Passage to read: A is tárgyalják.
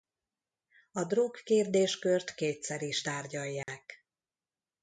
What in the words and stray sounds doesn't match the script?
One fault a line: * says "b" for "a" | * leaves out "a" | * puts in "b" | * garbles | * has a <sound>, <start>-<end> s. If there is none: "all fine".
* puts in "drog kérdéskört kétszer"
* has a dropout, 3.6-3.7 s